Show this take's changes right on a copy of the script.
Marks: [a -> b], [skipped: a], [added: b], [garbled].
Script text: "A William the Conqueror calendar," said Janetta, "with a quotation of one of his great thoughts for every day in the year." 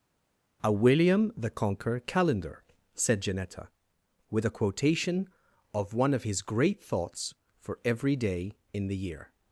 "A William the Conqueror calendar," said Janetta, "with a quotation of one of his great thoughts for every day in the year."